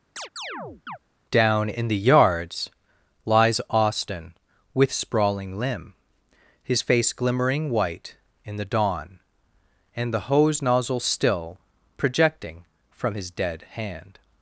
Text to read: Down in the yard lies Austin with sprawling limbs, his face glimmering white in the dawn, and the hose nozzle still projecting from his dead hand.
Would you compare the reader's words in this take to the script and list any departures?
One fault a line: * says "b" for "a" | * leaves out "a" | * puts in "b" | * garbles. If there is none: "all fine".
* says "yards" for "yard"
* says "limb" for "limbs"